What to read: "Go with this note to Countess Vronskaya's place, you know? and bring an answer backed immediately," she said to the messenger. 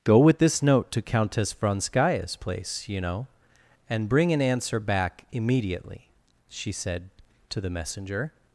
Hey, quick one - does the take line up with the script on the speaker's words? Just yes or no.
no